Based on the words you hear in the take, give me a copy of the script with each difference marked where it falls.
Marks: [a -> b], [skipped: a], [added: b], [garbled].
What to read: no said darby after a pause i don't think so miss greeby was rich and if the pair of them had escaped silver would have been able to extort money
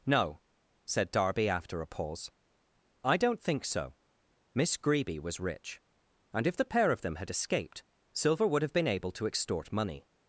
no said darby after a pause i don't think so miss greeby was rich and if the pair of them had escaped silver would have been able to extort money